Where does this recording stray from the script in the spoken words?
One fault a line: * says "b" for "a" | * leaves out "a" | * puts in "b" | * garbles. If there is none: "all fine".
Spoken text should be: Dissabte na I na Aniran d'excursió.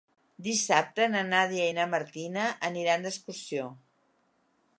* puts in "Nàdia"
* puts in "Martina"